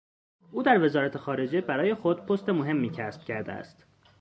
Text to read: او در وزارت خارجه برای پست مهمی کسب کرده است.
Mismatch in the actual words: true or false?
true